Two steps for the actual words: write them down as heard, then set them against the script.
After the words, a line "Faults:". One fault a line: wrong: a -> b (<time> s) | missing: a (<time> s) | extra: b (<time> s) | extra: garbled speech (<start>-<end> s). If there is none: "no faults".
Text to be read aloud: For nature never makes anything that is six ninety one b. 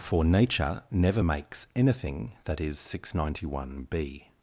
For nature never makes anything that is six ninety one b.
Faults:
no faults